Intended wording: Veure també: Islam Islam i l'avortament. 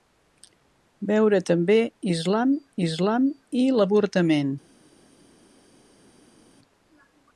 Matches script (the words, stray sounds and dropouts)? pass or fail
pass